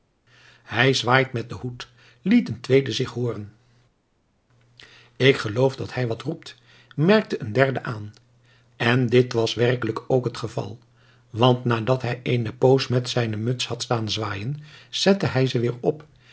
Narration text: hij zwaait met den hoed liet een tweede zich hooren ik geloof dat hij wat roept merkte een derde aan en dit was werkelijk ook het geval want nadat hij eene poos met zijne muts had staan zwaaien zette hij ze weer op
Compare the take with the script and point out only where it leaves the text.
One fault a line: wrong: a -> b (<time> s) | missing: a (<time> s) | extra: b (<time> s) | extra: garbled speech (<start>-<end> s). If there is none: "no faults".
no faults